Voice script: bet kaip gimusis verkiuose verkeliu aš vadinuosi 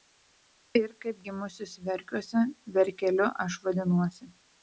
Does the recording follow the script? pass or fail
fail